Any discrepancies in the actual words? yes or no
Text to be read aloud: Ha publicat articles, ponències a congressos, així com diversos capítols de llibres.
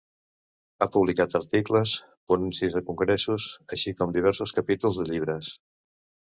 no